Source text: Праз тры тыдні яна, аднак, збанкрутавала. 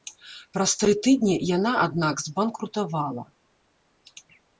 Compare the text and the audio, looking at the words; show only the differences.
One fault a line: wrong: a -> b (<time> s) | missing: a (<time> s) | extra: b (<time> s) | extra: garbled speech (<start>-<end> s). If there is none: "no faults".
no faults